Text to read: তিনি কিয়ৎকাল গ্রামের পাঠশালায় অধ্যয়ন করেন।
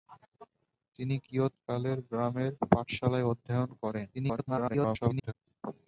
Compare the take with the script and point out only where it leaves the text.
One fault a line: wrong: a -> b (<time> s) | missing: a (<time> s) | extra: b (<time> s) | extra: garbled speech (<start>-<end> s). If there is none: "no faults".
extra: garbled speech (4.1-5.3 s)